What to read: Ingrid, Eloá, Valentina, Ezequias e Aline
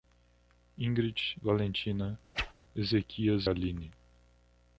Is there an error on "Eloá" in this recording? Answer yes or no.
yes